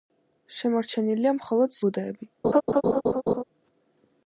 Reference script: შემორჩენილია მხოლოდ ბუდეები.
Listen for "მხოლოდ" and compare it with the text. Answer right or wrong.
right